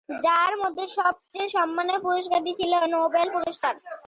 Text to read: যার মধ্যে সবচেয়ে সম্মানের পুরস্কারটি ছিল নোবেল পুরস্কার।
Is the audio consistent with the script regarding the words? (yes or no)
yes